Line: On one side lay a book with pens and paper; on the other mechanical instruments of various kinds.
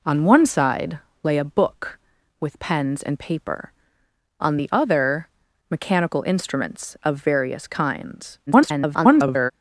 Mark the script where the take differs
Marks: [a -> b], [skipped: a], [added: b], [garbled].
On one side lay a book with pens and paper; on the other mechanical instruments of various kinds. [garbled]